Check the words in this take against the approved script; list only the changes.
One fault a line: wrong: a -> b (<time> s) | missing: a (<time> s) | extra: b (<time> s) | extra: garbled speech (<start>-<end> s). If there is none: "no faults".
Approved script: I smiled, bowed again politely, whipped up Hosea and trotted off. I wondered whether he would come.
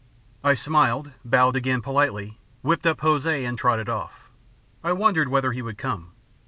no faults